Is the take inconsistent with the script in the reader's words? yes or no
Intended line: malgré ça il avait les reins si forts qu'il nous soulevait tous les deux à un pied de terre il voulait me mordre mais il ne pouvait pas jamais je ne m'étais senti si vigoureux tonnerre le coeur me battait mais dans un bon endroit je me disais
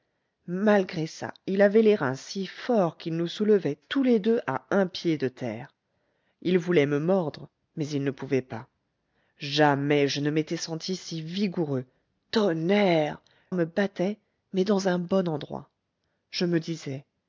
yes